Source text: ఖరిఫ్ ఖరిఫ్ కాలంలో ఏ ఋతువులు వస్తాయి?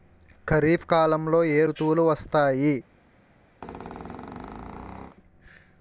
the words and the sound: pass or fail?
fail